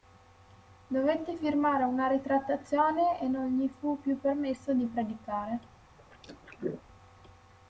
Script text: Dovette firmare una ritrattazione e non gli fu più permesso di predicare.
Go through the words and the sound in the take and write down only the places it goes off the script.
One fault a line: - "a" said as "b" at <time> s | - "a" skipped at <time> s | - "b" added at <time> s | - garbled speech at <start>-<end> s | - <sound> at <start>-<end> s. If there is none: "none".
- throat clearing at 6.0-6.8 s